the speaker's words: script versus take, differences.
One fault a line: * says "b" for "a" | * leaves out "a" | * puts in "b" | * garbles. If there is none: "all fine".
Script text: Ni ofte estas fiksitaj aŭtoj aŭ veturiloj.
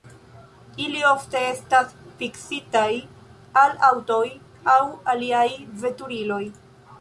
* says "Ili" for "Ni"
* puts in "al"
* puts in "aliaj"